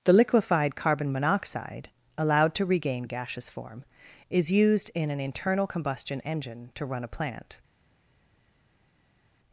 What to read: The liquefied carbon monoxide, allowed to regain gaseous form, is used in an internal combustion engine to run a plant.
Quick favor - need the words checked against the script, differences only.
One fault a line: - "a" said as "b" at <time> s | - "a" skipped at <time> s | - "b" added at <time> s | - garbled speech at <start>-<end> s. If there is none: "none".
none